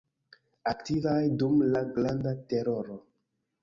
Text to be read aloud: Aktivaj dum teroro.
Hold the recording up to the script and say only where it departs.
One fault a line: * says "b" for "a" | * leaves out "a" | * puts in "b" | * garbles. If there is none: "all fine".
* puts in "la Granda"